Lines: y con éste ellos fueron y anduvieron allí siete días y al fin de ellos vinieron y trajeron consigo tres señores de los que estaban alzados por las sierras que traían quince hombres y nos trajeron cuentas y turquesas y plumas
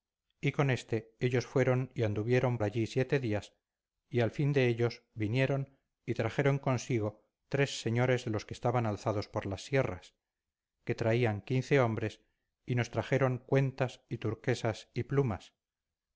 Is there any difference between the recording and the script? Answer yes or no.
no